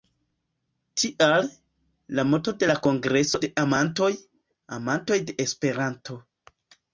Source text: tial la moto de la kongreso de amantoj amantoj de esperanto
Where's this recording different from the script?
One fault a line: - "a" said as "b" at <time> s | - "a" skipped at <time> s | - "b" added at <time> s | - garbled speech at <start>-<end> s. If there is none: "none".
none